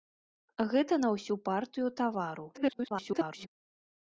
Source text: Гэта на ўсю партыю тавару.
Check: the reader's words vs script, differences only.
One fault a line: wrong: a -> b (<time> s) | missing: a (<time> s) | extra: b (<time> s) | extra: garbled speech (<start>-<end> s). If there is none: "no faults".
extra: garbled speech (2.5-3.5 s)